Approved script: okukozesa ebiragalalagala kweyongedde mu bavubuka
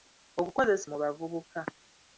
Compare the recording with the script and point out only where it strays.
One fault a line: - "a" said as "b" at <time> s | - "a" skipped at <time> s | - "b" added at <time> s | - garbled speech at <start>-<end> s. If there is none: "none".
- "ebiragalalagala kweyongedde" skipped at 0.9 s